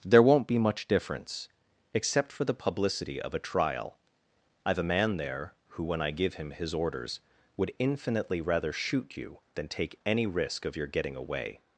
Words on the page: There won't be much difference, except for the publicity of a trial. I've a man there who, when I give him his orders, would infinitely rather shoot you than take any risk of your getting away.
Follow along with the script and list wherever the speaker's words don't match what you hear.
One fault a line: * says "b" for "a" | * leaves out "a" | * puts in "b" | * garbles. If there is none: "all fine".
all fine